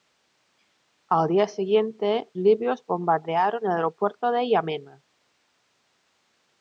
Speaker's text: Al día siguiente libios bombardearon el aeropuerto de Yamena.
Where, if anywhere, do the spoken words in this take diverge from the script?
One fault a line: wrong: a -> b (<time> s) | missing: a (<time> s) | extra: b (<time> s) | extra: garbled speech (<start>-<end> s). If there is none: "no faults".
no faults